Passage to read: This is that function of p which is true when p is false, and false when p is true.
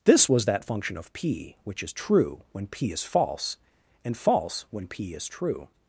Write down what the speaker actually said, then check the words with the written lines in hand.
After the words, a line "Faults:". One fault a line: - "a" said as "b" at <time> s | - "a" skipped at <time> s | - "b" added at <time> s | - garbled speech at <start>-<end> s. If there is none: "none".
This was that function of p which is true when p is false, and false when p is true.
Faults:
- "is" said as "was" at 0.3 s